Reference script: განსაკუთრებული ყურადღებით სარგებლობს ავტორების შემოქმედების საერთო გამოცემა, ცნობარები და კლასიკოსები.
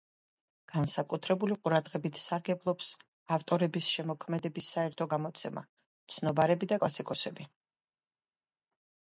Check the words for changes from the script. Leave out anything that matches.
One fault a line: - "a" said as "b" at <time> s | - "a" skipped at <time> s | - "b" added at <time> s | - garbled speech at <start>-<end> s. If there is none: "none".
none